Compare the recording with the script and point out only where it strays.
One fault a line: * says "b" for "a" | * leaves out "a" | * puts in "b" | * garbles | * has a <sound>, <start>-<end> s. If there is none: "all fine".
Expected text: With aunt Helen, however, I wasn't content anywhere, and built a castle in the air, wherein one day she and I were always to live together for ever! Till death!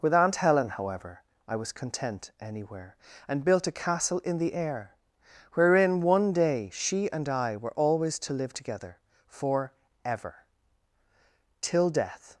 * says "was" for "wasn't"